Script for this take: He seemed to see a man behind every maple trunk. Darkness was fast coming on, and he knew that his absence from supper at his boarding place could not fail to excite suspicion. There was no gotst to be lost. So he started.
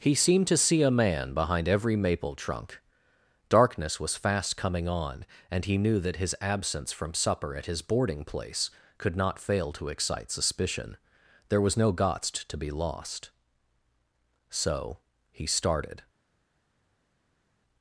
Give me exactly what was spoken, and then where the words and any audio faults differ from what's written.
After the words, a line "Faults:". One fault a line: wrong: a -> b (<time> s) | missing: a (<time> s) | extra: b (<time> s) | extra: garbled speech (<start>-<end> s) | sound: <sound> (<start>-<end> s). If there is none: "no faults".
He seemed to see a man behind every maple trunk. Darkness was fast coming on, and he knew that his absence from supper at his boarding place could not fail to excite suspicion. There was no gotst to be lost. So he started.
Faults:
no faults